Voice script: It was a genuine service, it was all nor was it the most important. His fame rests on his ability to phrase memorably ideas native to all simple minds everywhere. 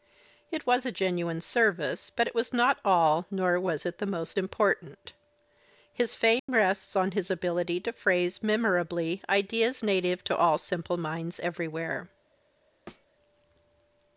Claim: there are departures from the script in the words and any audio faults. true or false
true